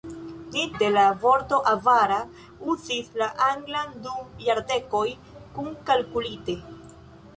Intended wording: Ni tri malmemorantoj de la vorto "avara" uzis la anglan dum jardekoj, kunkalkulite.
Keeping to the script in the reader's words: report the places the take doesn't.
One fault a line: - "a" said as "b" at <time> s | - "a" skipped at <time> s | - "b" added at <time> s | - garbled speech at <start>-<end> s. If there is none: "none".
- "tri malmemorantoj" skipped at 0.6 s